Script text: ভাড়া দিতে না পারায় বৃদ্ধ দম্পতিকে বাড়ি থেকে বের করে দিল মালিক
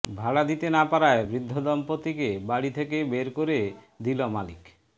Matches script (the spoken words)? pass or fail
pass